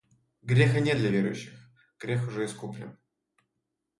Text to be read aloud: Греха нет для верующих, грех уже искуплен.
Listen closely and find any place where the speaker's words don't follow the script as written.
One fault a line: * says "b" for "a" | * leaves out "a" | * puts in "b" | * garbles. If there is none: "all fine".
all fine